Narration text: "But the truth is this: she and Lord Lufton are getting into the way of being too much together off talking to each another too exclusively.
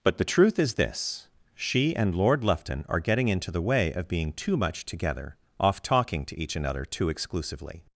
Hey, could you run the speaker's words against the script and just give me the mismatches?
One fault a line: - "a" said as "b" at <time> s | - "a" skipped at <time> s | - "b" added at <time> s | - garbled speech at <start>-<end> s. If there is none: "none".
none